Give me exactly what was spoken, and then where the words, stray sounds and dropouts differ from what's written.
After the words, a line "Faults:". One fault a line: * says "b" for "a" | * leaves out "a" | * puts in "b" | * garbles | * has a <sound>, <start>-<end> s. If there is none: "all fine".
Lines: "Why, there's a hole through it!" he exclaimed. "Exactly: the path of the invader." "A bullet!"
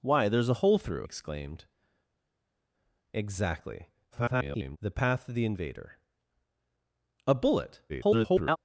"Why, there's a hole through exclaimed. "Exactly: [garbled] the path of the invader." "A bullet!" [garbled]
Faults:
* leaves out "it he"
* garbles
* garbles